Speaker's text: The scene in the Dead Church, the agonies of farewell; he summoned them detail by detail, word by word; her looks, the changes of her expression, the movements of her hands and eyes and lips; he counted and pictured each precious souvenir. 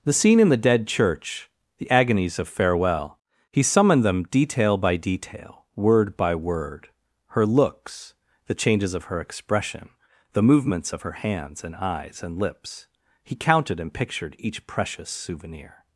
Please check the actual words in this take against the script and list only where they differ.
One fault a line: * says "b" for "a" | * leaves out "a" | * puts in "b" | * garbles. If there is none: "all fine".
all fine